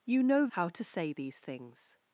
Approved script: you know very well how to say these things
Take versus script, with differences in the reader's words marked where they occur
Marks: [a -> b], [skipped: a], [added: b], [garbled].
you know [skipped: very well] how to say these things